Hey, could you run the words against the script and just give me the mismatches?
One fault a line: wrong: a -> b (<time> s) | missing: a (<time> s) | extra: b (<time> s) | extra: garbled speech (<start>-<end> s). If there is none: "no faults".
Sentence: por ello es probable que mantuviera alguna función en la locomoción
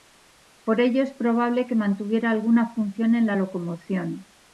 no faults